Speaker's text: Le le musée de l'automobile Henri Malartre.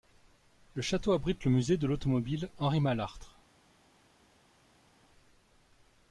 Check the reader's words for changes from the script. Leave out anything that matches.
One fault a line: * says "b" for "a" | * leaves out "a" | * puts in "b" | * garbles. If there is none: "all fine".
* puts in "château abrite"